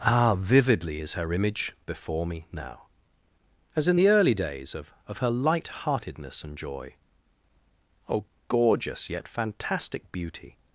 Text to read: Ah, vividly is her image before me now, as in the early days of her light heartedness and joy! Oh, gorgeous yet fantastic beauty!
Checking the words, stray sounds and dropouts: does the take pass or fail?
fail